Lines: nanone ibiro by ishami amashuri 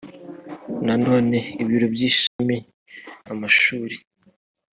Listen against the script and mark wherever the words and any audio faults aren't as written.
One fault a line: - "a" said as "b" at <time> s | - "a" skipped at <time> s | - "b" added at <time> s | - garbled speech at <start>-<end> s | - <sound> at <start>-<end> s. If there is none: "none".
- dropout at 2.3-2.4 s